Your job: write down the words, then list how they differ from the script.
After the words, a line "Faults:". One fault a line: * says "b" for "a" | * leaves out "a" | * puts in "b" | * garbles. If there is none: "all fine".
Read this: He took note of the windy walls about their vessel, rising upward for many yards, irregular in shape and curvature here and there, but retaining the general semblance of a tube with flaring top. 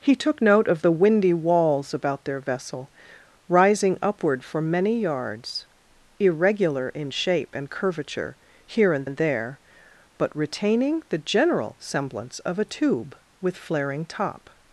He took note of the windy walls about their vessel, rising upward for many yards, irregular in shape and curvature here and and there, but retaining the general semblance of a tube with flaring top.
Faults:
* puts in "and"